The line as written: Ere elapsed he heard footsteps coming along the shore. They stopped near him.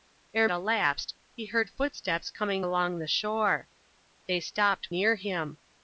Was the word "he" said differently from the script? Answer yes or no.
no